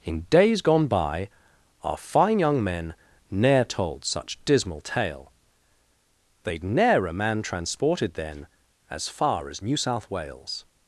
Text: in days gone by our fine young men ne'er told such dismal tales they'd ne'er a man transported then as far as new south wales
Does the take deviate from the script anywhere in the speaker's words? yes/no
yes